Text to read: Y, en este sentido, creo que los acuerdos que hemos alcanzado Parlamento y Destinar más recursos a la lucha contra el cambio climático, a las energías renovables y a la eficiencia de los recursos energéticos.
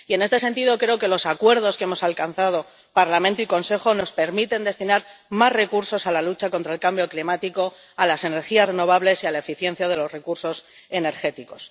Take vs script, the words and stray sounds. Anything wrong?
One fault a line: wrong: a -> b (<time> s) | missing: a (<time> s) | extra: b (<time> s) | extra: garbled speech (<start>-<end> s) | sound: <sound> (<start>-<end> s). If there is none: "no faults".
extra: Consejo nos permiten (3.5 s)